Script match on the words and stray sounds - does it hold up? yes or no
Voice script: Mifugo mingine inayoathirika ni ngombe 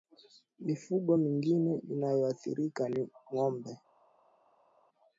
yes